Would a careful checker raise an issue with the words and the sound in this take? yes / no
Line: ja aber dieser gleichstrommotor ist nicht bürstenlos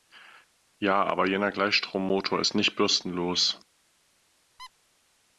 yes